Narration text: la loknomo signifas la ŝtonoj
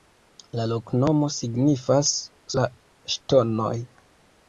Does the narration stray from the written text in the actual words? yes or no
no